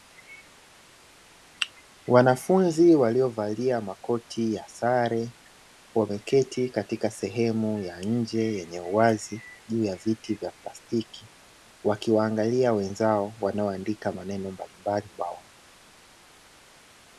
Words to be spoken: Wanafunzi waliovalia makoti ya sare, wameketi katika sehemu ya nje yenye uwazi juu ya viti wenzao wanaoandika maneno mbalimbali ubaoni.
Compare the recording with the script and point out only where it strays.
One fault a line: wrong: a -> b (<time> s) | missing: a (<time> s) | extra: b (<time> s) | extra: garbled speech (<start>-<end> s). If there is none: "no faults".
extra: vya plastiki Wakiwaangalia (10.3 s)